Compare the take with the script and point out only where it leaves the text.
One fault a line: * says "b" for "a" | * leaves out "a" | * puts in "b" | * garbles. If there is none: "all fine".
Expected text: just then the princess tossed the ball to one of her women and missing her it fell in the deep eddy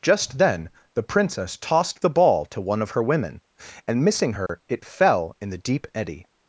all fine